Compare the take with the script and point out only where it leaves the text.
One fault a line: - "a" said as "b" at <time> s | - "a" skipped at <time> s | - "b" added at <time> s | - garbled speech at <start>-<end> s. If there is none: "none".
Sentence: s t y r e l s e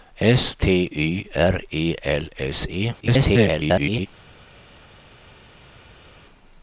- garbled speech at 3.0-4.1 s